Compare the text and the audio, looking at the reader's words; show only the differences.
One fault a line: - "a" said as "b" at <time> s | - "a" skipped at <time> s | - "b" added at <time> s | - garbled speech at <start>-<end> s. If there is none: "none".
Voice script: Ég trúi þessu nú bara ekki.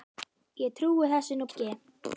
- "bara" skipped at 1.5 s